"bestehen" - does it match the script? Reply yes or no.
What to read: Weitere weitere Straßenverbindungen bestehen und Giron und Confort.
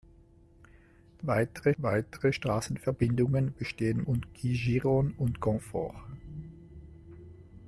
yes